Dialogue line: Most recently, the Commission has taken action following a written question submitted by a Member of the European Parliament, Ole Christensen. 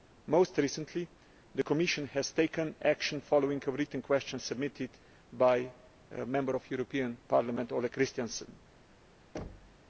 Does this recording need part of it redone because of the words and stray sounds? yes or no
yes